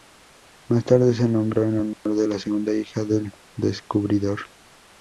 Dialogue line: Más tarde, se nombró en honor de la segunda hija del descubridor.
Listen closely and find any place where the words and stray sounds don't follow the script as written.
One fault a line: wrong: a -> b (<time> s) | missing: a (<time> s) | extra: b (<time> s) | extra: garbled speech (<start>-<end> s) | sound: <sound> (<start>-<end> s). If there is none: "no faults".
sound: dropout (1.9-2.1 s)